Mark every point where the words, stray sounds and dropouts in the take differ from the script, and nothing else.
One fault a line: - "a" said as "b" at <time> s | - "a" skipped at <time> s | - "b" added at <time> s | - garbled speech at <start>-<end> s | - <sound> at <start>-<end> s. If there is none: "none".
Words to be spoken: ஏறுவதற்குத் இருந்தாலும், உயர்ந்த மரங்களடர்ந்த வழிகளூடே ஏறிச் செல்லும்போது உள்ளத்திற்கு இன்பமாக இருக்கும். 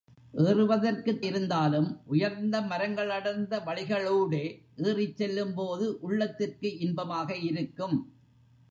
none